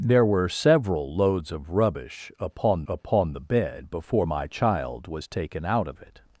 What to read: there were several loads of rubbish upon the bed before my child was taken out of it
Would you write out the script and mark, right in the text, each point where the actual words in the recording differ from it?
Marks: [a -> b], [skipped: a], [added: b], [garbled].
there were several loads of rubbish upon [added: upon] the bed before my child was taken out of it